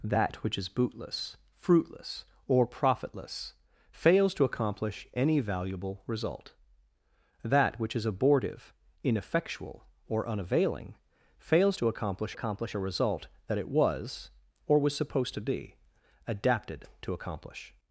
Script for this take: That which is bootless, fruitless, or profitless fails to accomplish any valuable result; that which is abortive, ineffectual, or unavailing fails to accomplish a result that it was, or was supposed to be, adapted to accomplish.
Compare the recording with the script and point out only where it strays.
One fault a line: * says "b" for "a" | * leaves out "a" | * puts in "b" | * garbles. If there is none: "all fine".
* puts in "accomplish"